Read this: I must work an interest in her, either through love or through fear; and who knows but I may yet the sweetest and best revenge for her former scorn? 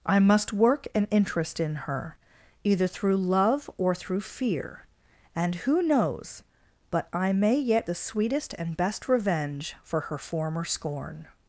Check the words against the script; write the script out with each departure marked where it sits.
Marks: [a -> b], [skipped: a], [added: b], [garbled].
I must work an interest in her, either through love or through fear; and who knows but I may yet the sweetest and best revenge for her former scorn?